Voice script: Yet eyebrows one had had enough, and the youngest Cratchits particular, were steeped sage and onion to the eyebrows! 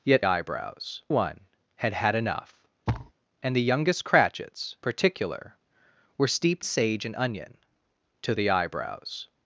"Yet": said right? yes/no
yes